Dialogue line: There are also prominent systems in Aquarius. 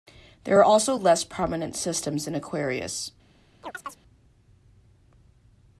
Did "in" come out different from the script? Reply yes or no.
no